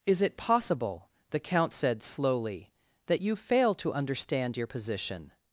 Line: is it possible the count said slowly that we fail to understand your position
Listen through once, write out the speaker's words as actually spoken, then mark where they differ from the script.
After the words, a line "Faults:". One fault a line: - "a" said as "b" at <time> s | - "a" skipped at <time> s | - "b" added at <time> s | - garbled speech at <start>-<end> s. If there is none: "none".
is it possible the count said slowly that you fail to understand your position
Faults:
- "we" said as "you" at 3.2 s